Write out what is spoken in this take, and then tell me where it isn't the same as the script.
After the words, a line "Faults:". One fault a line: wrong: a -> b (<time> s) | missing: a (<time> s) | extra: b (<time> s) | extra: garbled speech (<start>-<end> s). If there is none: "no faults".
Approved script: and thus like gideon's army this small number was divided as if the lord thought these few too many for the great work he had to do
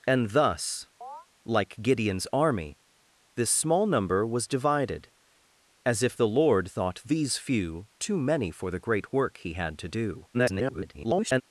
and thus like gideon's army this small number was divided as if the lord thought these few too many for the great work he had to do [garbled]
Faults:
extra: garbled speech (10.3-11.4 s)